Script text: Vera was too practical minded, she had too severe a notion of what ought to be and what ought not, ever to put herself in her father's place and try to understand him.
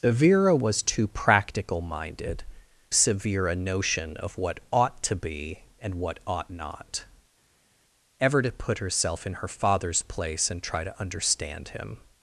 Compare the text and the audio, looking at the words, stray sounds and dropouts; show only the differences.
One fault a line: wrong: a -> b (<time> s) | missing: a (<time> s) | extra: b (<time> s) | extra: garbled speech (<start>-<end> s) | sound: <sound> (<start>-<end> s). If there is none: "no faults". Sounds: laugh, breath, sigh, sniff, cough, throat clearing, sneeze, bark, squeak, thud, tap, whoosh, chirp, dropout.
missing: she had too (2.4 s)